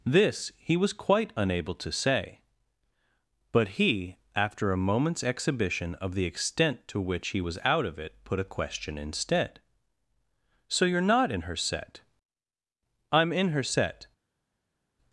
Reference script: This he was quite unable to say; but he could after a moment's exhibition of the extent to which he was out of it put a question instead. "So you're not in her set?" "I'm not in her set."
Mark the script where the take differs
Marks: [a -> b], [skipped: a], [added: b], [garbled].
This he was quite unable to say; but he [skipped: could] after a moment's exhibition of the extent to which he was out of it put a question instead. "So you're not in her set?" "I'm [skipped: not] in her set."